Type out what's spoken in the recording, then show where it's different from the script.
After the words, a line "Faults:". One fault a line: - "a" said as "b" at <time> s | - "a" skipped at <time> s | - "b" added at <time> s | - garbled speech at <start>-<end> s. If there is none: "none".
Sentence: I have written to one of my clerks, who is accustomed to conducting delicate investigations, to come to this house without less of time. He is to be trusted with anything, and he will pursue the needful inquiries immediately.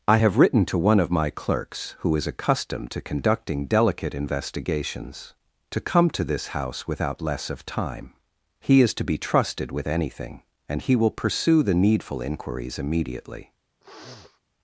I have written to one of my clerks, who is accustomed to conducting delicate investigations, to come to this house without less of time. He is to be trusted with anything, and he will pursue the needful inquiries immediately.
Faults:
none